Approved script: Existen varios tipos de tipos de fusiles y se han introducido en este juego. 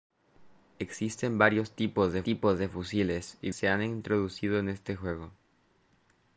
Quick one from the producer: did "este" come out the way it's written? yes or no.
yes